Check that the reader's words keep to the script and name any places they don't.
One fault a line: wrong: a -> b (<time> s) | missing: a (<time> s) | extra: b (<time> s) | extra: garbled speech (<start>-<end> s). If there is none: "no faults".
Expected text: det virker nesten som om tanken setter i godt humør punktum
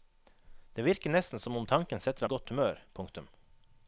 no faults